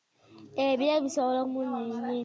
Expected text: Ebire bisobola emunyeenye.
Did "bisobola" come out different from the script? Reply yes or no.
no